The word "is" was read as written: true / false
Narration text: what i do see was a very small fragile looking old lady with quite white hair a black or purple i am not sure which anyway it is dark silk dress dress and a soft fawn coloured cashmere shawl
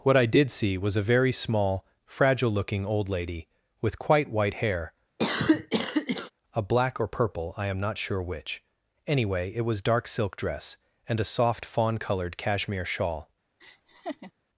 false